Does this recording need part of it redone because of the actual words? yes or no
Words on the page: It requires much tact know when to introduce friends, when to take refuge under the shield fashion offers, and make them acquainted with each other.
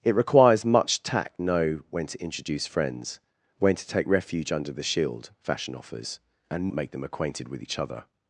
no